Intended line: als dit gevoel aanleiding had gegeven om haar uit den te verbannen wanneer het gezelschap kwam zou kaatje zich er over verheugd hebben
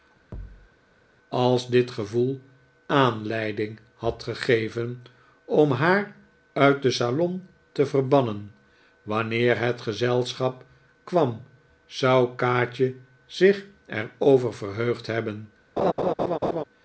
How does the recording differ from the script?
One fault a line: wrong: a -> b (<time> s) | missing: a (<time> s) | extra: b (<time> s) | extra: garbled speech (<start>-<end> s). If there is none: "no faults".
extra: salon (6.9 s)